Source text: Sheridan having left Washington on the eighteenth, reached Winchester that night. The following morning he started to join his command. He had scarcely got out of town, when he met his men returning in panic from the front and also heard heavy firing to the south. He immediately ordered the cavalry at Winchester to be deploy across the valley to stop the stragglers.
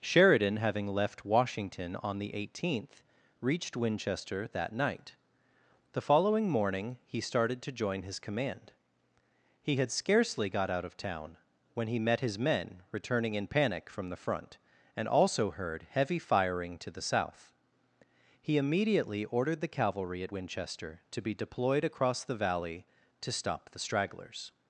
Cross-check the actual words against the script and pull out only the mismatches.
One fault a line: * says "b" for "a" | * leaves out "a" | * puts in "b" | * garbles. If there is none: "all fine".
* says "deployed" for "deploy"